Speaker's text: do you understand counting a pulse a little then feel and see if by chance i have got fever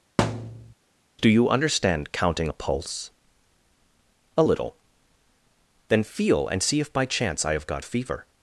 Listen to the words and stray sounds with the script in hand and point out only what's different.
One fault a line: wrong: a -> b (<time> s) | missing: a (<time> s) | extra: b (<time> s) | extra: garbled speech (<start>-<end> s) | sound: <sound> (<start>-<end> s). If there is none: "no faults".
sound: thud (0.2-0.7 s)